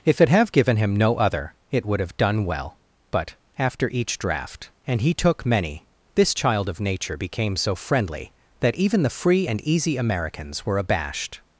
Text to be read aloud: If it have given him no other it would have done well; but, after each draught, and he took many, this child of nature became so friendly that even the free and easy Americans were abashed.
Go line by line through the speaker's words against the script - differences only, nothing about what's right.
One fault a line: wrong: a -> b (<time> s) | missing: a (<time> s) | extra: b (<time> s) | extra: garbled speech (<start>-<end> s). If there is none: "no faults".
no faults